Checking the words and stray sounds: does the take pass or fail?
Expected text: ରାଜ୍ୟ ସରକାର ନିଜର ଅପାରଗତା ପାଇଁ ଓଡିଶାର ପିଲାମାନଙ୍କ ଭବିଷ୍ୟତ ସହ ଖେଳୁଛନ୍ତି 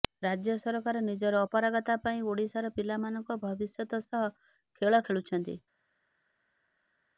fail